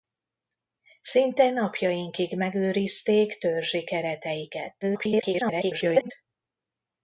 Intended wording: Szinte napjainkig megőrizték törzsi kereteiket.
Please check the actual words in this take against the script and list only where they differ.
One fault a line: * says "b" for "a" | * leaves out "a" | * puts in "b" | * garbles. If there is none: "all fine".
* garbles